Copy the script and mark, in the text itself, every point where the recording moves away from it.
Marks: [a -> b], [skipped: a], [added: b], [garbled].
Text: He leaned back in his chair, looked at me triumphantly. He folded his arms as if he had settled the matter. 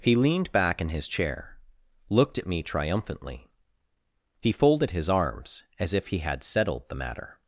He leaned back in his chair, looked at me triumphantly. He folded his arms as if he had settled the matter.